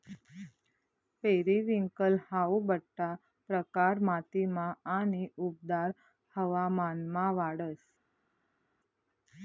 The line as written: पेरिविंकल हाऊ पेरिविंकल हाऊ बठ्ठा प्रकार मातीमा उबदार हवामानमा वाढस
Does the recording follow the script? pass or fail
fail